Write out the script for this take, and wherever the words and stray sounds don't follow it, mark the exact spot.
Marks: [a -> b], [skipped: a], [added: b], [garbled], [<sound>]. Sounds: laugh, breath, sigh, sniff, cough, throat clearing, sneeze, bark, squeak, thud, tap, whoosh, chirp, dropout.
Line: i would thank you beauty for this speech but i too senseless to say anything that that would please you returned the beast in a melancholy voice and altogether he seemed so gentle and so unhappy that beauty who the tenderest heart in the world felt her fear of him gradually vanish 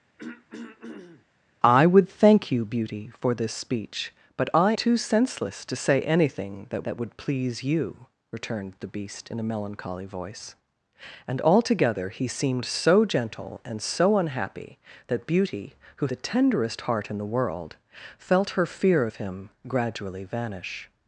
[throat clearing] i would thank you beauty for this speech but i too senseless to say anything that that would please you returned the beast in a melancholy voice and altogether he seemed so gentle and so unhappy that beauty who the tenderest heart in the world felt her fear of him gradually vanish